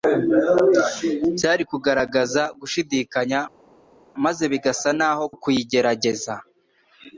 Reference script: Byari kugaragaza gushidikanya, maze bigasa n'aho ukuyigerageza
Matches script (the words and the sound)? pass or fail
pass